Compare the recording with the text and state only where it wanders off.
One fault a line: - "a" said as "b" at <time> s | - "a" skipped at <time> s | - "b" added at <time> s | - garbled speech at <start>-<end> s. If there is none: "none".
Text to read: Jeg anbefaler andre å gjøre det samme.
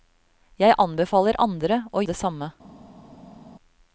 - "gjøre" skipped at 2.0 s